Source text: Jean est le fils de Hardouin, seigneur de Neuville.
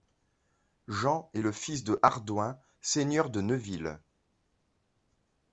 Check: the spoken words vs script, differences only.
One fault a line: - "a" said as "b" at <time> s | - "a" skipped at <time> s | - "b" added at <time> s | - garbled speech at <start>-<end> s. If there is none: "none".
none